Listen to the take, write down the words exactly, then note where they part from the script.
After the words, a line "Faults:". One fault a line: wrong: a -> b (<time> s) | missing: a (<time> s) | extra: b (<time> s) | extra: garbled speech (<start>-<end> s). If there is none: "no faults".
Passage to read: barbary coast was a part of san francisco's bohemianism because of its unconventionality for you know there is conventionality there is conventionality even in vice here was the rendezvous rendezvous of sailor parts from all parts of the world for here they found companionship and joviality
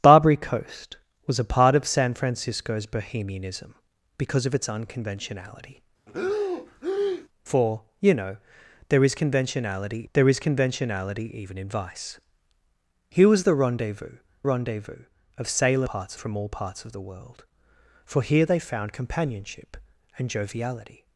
barbary coast was a part of san francisco's bohemianism because of its unconventionality for you know there is conventionality there is conventionality even in vice here was the rendezvous rendezvous of sailor parts from all parts of the world for here they found companionship and joviality
Faults:
no faults